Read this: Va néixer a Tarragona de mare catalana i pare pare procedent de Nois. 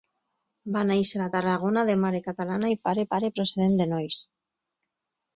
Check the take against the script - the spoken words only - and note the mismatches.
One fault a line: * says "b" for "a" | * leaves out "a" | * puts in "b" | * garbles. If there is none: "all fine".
all fine